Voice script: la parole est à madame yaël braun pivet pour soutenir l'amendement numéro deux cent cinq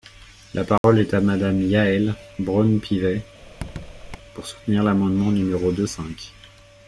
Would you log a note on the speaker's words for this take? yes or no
yes